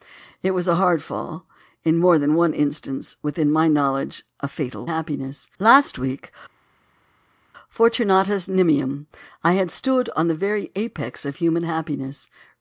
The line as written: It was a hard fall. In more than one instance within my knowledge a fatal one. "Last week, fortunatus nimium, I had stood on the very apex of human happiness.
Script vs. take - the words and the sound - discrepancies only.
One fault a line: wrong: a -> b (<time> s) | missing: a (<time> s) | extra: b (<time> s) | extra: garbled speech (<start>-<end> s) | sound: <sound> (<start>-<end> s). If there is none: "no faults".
wrong: one -> happiness (4.8 s)